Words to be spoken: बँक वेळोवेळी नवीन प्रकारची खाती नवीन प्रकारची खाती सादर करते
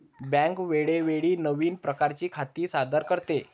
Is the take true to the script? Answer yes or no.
no